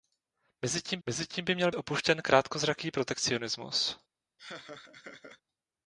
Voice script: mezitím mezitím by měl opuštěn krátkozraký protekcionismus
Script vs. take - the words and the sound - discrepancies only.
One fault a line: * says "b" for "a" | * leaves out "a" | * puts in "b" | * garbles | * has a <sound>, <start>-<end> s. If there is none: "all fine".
* has a laugh, 4.4-5.4 s